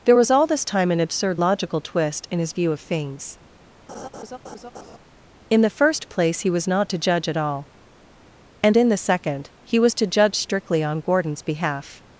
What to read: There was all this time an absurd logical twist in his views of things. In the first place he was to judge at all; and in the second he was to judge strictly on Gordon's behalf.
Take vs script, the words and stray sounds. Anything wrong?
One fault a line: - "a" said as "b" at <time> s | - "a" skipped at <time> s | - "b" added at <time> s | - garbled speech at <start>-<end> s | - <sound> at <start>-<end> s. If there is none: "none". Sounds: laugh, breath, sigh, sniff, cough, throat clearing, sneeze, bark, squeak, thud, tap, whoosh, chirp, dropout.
- "views" said as "view" at 2.5 s
- laugh at 3.9-5.0 s
- "not" added at 6.7 s